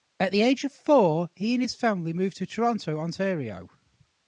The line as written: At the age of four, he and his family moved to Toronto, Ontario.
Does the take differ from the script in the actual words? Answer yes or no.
no